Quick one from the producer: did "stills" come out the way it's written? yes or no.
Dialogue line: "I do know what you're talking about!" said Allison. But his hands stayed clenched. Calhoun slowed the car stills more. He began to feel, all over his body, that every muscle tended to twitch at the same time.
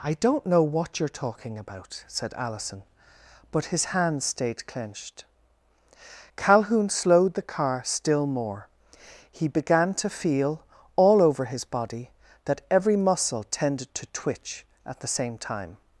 no